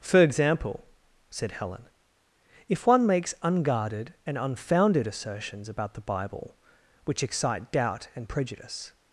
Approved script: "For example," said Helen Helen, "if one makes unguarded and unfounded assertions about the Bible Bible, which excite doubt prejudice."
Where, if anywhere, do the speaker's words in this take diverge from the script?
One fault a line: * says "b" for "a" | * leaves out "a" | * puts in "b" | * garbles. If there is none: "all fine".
* leaves out "Helen"
* leaves out "Bible"
* puts in "and"